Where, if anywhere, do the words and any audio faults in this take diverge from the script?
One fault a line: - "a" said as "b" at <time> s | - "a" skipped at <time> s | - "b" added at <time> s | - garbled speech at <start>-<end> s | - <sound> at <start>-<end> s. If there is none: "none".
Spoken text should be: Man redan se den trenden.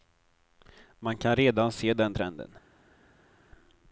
- "kan" added at 1.2 s